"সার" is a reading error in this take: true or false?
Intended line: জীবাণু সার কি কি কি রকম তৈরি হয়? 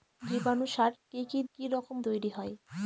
false